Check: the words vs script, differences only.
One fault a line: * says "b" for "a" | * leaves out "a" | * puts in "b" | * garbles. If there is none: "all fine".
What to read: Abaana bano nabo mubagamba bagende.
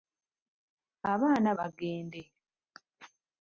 * leaves out "bano nabo mubagamba"